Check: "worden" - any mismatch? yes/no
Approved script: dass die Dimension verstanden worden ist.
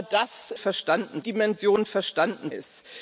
yes